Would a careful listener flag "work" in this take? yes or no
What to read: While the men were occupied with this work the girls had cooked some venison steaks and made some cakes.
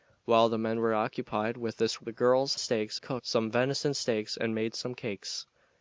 yes